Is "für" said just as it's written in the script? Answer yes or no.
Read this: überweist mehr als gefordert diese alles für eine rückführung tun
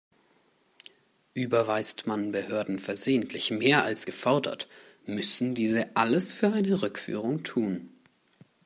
yes